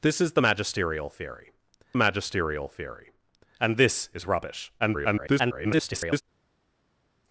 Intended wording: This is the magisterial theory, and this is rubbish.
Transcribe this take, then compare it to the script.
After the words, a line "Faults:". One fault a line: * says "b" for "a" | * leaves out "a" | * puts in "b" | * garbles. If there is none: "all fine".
This is the magisterial theory magisterial theory, and this is rubbish. [garbled]
Faults:
* puts in "magisterial theory"
* garbles